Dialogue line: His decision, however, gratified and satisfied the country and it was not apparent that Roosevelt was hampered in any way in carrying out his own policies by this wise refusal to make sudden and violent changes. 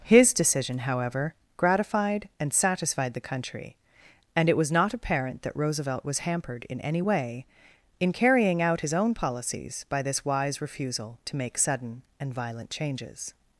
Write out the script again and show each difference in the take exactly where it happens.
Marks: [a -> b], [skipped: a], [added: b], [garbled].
His decision, however, gratified and satisfied the country and it was not apparent that Roosevelt was hampered in any way in carrying out his own policies by this wise refusal to make sudden and violent changes.